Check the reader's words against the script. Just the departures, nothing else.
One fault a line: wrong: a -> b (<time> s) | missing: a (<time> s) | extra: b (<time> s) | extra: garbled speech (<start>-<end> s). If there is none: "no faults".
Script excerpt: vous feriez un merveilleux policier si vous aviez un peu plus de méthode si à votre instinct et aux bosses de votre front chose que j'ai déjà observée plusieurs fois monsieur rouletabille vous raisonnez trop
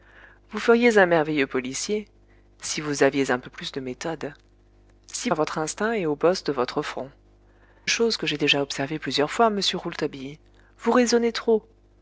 no faults